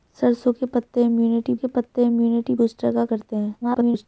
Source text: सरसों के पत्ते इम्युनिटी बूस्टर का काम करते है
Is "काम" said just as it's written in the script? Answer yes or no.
no